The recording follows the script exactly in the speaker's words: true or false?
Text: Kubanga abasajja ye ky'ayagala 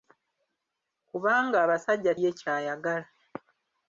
true